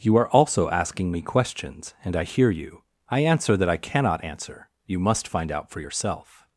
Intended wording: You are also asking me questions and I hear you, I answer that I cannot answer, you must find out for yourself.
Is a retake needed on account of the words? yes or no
no